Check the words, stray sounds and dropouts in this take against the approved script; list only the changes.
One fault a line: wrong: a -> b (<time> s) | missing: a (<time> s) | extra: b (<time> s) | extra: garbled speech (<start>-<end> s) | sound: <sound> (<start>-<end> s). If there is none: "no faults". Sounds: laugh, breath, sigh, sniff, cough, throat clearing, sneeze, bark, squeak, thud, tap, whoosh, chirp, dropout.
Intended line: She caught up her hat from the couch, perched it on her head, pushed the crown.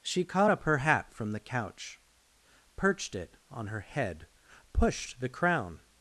no faults